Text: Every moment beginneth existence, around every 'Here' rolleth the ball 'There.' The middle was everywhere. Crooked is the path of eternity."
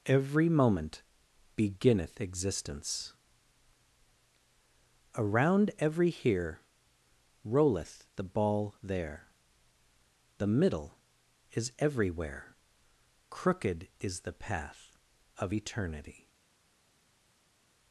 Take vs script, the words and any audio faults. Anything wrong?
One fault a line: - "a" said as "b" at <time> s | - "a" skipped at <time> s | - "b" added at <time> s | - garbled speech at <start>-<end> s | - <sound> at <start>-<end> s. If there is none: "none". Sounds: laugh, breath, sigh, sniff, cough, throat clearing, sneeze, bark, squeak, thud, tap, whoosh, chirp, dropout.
- "was" said as "is" at 11.5 s